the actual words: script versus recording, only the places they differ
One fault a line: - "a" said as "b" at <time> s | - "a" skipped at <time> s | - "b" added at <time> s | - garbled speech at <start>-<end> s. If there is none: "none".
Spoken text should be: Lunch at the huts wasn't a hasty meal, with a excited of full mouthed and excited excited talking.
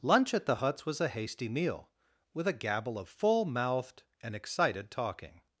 - "wasn't" said as "was" at 0.8 s
- "excited" said as "gabble" at 2.5 s
- "excited" skipped at 4.9 s